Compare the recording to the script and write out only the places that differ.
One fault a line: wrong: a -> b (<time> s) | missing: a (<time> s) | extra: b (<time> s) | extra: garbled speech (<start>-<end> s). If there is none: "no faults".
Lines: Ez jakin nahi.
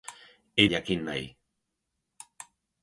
no faults